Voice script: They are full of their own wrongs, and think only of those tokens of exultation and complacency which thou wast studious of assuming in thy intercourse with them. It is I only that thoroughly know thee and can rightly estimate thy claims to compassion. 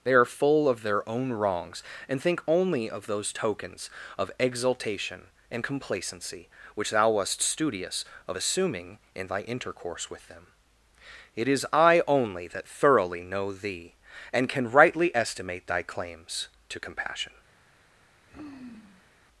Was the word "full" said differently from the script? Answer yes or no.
no